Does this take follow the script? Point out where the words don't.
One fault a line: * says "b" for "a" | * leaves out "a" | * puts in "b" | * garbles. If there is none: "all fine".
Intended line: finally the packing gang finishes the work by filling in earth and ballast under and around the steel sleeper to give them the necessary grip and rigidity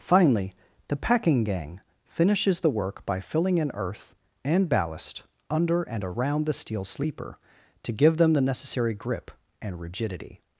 all fine